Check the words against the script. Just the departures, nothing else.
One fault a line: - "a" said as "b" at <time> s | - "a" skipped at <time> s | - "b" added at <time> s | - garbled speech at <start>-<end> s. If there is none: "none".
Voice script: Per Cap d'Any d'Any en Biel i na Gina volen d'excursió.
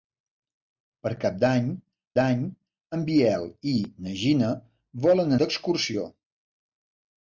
none